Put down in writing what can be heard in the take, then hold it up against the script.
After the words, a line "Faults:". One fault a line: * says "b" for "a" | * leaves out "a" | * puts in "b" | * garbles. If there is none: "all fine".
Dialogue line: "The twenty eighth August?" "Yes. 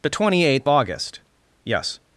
"The twenty eighth August?" "Yes.
Faults:
all fine